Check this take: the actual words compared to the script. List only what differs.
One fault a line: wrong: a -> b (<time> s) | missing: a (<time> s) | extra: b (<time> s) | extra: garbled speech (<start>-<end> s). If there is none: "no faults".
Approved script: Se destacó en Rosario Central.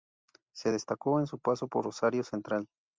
extra: su paso por (1.3 s)